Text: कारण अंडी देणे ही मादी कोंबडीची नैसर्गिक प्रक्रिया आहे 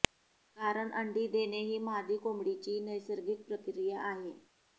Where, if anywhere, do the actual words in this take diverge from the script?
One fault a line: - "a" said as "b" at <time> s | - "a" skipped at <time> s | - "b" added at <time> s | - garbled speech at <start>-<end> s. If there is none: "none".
none